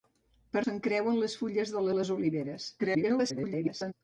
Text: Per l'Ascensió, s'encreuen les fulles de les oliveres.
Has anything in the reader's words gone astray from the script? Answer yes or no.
yes